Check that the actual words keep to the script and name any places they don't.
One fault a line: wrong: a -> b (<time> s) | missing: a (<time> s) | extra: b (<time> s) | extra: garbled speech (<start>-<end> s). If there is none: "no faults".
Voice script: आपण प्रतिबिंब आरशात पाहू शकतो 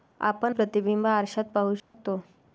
no faults